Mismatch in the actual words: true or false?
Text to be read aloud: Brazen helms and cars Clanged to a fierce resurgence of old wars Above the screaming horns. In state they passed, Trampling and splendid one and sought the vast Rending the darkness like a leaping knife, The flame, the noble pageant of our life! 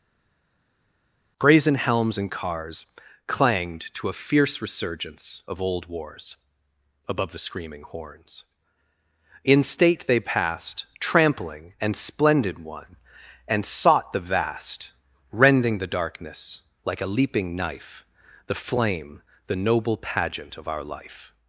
false